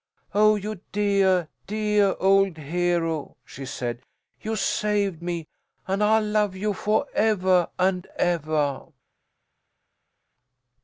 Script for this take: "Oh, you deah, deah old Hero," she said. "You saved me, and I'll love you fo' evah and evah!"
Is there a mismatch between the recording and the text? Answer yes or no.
no